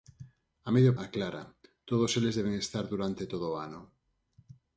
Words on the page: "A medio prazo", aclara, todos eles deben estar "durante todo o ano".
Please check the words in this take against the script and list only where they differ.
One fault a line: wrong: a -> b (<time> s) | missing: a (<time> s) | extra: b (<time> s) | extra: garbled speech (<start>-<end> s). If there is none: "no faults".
missing: prazo (0.9 s)